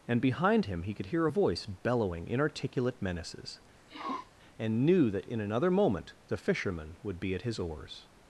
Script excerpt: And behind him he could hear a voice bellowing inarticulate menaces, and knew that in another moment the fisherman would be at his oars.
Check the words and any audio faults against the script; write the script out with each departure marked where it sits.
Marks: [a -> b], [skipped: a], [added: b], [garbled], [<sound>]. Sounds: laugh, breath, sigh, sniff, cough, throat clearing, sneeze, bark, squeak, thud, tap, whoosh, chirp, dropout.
And behind him he could hear a voice bellowing inarticulate menaces, [sniff] and knew that in another moment the fisherman would be at his oars.